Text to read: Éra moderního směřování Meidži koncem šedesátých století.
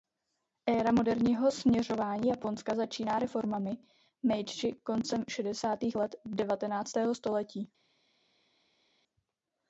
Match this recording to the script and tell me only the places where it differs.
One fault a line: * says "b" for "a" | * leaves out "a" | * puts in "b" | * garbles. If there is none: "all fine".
* puts in "Japonska začíná reformami"
* puts in "let devatenáctého"